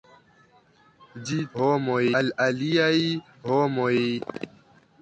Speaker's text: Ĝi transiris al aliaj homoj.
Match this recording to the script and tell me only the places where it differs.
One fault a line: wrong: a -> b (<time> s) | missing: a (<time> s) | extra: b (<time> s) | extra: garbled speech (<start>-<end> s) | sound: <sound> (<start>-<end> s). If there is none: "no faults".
wrong: transiris -> homoj (1.6 s)